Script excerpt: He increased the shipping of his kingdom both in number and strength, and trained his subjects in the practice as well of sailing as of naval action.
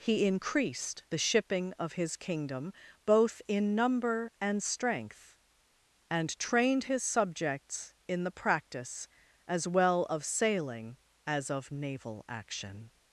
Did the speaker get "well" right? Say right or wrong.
right